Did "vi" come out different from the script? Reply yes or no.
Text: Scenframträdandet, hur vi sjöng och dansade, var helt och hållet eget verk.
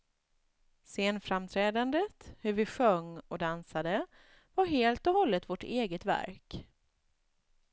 no